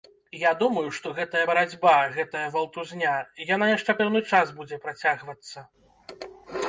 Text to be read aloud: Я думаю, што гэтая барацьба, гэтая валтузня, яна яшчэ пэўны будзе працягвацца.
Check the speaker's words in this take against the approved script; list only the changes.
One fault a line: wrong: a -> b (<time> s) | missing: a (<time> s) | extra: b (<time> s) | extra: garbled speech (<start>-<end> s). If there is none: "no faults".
extra: час (4.3 s)